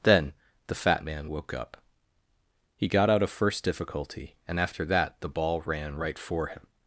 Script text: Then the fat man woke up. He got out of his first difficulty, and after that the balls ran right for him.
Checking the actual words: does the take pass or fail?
fail